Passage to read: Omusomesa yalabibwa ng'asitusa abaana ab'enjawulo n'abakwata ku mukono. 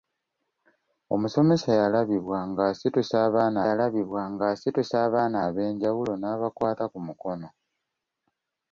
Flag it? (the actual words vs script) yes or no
yes